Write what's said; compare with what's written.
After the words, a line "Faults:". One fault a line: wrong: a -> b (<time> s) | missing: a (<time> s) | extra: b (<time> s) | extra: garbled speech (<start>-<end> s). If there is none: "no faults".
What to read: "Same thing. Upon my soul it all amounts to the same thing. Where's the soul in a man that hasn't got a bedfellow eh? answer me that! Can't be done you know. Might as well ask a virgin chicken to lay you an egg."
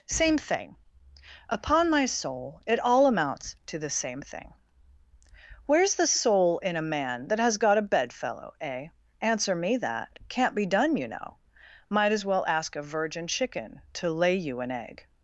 "Same thing. Upon my soul it all amounts to the same thing. Where's the soul in a man that has got a bedfellow eh? answer me that! Can't be done you know. Might as well ask a virgin chicken to lay you an egg."
Faults:
wrong: hasn't -> has (7.4 s)